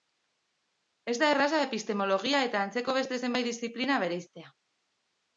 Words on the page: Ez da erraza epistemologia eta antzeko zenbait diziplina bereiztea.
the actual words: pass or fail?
fail